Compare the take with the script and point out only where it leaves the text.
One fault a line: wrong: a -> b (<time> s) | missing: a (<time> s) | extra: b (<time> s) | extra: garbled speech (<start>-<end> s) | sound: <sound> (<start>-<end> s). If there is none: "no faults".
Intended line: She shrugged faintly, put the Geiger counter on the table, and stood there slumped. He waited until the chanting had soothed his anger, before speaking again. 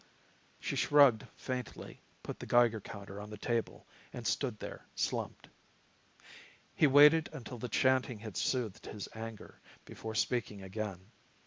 no faults